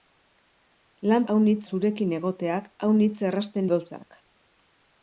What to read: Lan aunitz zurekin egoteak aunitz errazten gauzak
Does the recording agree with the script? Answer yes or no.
yes